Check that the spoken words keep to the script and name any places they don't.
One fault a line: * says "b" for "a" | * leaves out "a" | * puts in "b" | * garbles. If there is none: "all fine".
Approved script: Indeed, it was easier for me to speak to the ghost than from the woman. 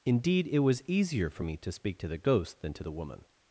* says "to" for "from"